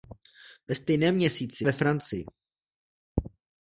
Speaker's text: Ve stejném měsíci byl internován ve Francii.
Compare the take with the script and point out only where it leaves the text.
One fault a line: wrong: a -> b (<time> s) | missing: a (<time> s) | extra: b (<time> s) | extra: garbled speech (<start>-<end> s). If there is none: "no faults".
missing: byl internován (1.6 s)